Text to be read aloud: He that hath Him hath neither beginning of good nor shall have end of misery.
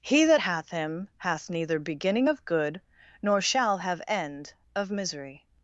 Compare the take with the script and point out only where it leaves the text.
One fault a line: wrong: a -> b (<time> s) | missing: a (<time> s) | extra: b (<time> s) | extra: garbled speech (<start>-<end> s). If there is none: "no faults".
no faults